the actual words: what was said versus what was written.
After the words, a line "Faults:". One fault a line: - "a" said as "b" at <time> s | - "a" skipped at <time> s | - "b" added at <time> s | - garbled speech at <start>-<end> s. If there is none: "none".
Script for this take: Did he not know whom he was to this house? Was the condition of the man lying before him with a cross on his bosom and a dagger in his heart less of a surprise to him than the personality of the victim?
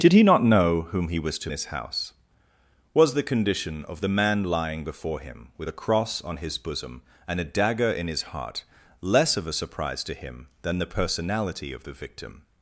Did he not know whom he was to this house? Was the condition of the man lying before him with a cross on his bosom and a dagger in his heart less of a surprise to him than the personality of the victim?
Faults:
none